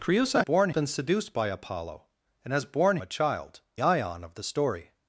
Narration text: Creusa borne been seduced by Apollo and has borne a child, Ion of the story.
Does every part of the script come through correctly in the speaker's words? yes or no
yes